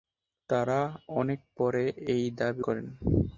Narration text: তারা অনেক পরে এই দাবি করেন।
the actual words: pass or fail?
pass